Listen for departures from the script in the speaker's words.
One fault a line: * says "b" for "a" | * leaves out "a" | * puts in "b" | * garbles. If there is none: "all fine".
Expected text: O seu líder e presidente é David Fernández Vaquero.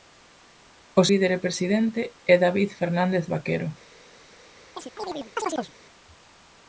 * leaves out "seu"